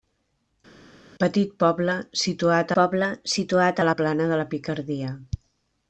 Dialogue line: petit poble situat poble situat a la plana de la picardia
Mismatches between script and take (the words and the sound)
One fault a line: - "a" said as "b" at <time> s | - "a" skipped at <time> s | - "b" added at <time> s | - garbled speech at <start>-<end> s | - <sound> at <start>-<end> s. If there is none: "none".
none